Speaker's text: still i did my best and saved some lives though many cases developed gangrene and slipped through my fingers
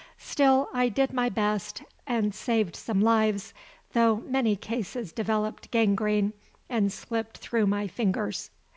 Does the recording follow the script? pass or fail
pass